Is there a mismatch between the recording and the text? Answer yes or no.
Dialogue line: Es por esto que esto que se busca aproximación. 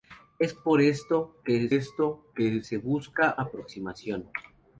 no